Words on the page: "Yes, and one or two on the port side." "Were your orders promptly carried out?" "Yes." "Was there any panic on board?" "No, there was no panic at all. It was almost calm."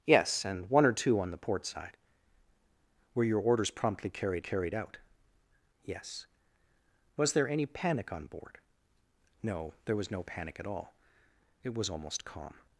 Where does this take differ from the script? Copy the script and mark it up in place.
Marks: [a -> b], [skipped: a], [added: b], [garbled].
"Yes, and one or two on the port side." "Were your orders promptly carried [added: carried] out?" "Yes." "Was there any panic on board?" "No, there was no panic at all. It was almost calm."